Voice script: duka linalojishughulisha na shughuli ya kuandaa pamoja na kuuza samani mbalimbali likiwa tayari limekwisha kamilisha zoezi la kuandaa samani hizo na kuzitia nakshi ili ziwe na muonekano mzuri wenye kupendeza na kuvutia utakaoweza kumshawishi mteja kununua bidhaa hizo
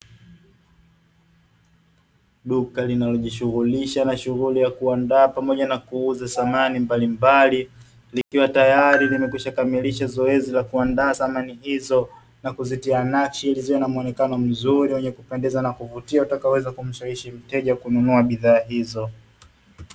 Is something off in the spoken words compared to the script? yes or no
no